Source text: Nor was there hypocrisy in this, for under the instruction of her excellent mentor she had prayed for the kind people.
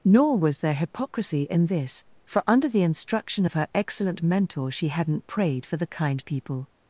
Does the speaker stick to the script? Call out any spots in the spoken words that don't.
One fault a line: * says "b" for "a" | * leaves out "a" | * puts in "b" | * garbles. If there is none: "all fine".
* says "hadn't" for "had"